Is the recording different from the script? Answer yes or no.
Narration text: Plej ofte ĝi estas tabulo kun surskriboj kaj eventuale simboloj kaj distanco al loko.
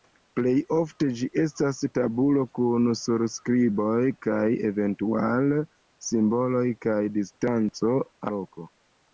yes